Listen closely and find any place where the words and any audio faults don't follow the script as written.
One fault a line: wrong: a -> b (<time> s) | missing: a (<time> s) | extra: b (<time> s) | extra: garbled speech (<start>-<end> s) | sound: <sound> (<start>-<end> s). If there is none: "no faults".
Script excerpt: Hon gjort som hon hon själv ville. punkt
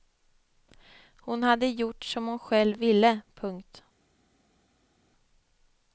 extra: hade (1.4 s)
missing: hon (2.4 s)